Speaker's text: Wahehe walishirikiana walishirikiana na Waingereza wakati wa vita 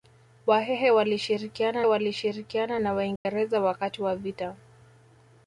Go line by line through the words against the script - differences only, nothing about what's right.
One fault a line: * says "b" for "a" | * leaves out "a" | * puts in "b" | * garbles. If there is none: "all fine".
all fine